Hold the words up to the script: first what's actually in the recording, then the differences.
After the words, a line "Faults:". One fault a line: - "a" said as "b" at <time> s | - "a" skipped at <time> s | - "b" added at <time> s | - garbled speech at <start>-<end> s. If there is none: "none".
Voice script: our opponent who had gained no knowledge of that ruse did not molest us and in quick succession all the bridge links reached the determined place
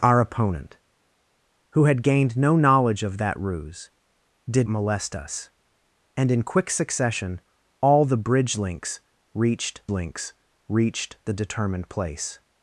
our opponent who had gained no knowledge of that ruse did molest us and in quick succession all the bridge links reached links reached the determined place
Faults:
- "not" skipped at 4.7 s
- "links reached" added at 9.9 s